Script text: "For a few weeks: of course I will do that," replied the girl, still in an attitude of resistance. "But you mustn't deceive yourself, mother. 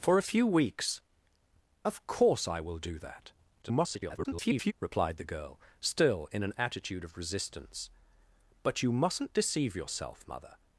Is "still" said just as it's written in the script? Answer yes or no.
yes